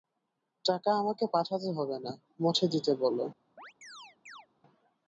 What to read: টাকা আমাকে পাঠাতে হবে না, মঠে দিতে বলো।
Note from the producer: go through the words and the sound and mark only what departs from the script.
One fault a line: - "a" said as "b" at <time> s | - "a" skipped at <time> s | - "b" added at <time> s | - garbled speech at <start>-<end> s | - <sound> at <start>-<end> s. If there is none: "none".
- chirp at 3.6-4.5 s